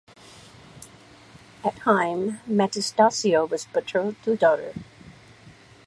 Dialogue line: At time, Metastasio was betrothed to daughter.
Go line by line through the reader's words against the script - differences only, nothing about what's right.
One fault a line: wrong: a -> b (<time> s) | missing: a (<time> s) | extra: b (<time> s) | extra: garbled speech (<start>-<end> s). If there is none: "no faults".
no faults